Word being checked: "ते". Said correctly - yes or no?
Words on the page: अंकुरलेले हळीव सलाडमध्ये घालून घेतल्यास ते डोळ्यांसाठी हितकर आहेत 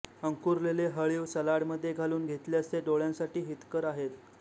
yes